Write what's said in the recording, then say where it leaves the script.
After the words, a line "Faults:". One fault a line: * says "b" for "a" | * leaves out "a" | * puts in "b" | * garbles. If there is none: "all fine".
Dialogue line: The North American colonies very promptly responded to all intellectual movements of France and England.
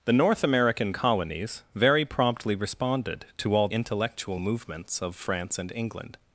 The North American colonies very promptly responded to all intellectual movements of France and England.
Faults:
all fine